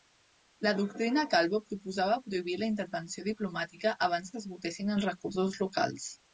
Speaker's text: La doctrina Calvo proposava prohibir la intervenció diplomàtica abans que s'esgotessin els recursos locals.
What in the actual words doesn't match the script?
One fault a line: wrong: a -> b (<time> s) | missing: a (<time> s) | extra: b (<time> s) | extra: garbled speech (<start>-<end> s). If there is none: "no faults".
missing: que (4.4 s)